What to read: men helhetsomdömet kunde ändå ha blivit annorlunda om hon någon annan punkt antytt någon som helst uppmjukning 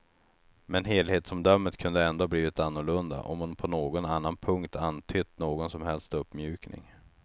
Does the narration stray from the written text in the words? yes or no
yes